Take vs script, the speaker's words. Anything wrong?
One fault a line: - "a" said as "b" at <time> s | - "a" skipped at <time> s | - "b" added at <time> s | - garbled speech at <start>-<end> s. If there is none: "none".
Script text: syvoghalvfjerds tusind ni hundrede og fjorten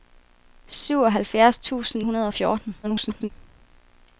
- "ni" skipped at 2.0 s
- garbled speech at 2.8-3.3 s